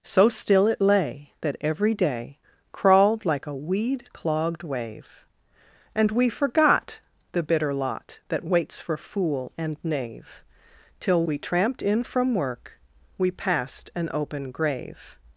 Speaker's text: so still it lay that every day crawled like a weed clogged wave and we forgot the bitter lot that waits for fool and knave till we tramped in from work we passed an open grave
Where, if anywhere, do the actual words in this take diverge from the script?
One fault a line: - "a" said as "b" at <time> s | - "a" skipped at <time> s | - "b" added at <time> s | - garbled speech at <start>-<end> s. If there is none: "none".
none